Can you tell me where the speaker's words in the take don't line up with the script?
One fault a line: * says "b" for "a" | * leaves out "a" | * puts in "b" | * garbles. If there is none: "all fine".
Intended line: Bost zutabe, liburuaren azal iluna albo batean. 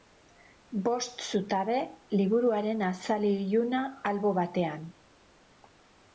all fine